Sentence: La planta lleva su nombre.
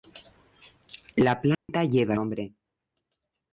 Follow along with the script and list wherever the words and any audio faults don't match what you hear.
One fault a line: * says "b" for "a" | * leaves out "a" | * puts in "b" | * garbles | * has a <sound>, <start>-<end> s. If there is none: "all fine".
* has a dropout, 1.5-1.7 s
* leaves out "su"